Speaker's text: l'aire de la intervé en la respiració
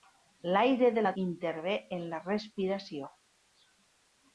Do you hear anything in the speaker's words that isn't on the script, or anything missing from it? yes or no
no